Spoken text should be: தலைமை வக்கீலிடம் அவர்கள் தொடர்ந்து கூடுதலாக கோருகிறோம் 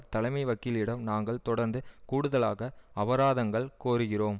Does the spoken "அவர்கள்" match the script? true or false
false